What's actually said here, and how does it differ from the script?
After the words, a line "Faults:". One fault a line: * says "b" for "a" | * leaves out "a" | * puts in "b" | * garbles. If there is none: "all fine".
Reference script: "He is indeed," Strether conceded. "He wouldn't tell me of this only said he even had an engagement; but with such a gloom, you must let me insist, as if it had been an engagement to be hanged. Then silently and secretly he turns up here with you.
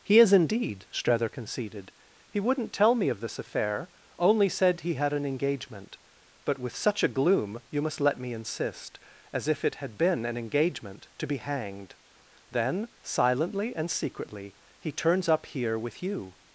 "He is indeed," Strether conceded. "He wouldn't tell me of this affair, only said he had an engagement; but with such a gloom, you must let me insist, as if it had been an engagement to be hanged. Then silently and secretly he turns up here with you.
Faults:
* puts in "affair"
* leaves out "even"